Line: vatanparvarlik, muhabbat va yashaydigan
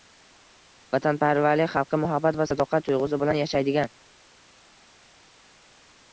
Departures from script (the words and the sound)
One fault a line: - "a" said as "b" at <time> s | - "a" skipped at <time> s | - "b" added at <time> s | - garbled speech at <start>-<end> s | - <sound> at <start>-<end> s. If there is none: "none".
- "xalqqa" added at 1.8 s
- "sadoqat tuyg‘usi bilan" added at 2.5 s